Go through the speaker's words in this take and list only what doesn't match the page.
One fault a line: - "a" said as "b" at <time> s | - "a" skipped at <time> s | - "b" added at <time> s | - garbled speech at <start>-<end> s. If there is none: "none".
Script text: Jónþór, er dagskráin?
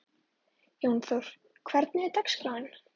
- "hvernig" added at 1.7 s